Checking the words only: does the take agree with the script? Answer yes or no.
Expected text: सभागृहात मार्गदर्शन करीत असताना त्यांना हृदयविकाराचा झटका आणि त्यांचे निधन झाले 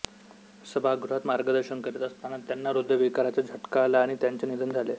no